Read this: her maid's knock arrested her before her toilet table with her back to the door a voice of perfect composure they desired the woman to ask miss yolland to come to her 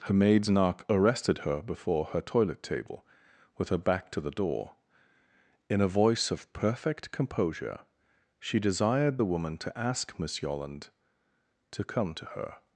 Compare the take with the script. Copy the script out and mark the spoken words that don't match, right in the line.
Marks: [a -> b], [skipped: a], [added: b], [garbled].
her maid's knock arrested her before her toilet table with her back to the door [added: in] a voice of perfect composure [they -> she] desired the woman to ask miss yolland to come to her